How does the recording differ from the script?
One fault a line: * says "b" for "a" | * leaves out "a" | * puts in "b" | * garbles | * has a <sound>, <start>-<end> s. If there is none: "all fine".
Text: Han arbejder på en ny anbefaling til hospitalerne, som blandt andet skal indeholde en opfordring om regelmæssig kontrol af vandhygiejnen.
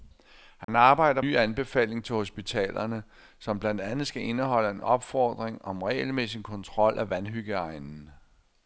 * has a dropout, 0.6-0.7 s
* leaves out "på en"